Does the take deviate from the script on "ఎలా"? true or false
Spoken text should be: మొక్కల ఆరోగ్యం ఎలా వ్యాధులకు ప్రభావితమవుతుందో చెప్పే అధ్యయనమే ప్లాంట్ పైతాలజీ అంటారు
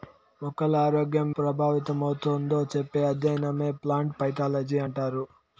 true